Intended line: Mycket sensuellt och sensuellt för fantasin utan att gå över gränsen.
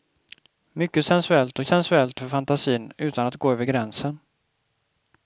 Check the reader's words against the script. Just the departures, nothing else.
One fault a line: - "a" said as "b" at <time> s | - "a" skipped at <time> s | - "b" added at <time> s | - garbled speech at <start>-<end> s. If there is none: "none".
none